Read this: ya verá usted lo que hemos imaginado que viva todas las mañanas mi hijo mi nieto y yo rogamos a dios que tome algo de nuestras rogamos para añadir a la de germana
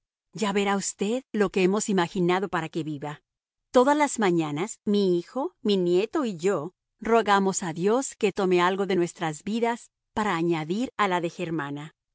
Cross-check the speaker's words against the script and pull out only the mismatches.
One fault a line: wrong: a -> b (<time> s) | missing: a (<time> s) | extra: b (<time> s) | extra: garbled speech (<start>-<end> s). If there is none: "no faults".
extra: para (2.5 s)
wrong: rogamos -> vidas (9.4 s)